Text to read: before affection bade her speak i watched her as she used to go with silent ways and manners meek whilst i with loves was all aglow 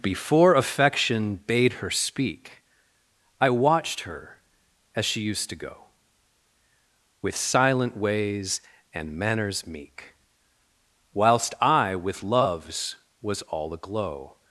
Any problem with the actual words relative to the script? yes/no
no